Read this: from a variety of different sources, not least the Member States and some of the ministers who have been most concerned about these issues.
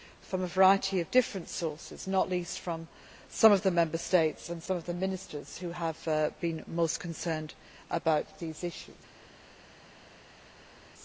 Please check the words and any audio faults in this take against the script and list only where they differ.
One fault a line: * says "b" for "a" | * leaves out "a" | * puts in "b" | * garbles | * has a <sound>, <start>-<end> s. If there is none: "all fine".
* puts in "from some of"